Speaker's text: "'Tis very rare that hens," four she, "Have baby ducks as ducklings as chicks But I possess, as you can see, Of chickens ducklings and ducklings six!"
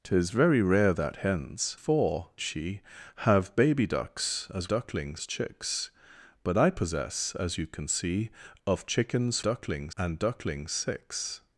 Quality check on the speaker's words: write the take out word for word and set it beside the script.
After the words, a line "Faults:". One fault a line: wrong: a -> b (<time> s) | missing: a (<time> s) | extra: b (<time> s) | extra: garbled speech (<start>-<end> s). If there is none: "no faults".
"'Tis very rare that hens," four she, "Have baby ducks as ducklings as chicks But I possess, as you can see, Of chickens ducklings and ducklings six!"
Faults:
no faults